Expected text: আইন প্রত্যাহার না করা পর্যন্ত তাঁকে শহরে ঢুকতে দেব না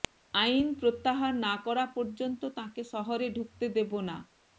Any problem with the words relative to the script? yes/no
no